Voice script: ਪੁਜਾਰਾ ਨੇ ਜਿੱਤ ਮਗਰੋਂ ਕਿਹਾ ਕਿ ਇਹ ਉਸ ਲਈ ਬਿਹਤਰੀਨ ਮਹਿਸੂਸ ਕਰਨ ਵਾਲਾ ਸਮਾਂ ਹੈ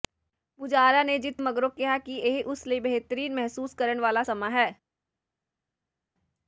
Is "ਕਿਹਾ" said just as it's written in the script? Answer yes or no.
yes